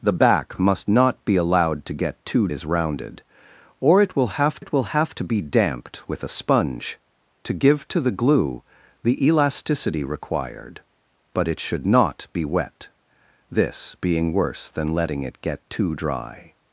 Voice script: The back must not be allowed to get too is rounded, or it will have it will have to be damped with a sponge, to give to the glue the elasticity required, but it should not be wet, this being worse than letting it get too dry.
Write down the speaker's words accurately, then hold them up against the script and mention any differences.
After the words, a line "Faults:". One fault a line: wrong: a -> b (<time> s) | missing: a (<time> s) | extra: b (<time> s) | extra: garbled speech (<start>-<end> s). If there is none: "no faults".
The back must not be allowed to get too is rounded, or it will have it will have to be damped with a sponge, to give to the glue the elasticity required, but it should not be wet, this being worse than letting it get too dry.
Faults:
no faults